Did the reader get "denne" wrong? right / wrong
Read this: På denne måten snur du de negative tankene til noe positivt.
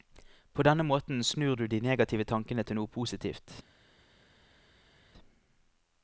right